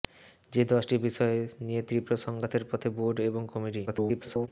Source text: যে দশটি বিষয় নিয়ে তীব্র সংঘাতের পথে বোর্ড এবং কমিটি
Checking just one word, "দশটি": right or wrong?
right